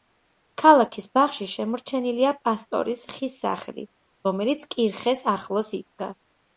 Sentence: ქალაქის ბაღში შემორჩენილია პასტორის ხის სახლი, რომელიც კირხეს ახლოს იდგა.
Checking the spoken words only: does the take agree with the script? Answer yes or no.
yes